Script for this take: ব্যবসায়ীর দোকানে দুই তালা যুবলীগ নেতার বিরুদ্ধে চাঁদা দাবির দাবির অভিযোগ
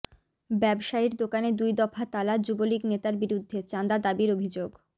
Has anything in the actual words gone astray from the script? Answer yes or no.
yes